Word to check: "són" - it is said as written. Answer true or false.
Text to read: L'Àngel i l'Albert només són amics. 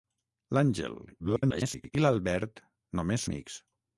false